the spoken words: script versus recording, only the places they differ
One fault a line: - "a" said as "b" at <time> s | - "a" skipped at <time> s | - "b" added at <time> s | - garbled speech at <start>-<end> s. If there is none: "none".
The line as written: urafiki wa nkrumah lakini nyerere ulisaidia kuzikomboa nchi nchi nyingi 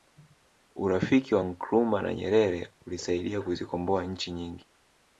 - "lakini" said as "na" at 2.0 s
- "nchi" skipped at 4.3 s